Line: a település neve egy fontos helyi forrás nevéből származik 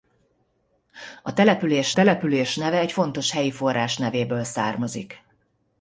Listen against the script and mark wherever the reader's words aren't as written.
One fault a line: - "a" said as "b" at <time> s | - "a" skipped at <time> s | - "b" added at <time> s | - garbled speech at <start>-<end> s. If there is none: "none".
- "település" added at 1.9 s